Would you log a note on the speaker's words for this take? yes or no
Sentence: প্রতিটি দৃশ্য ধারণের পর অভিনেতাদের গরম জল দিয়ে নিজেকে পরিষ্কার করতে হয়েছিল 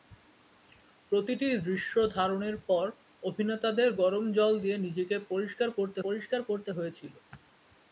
yes